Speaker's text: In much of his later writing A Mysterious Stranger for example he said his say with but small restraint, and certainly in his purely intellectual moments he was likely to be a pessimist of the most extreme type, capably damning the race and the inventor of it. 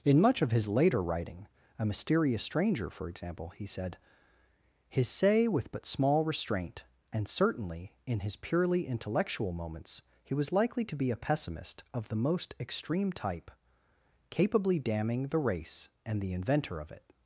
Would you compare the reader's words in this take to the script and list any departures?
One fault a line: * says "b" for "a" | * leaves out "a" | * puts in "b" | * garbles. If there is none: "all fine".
all fine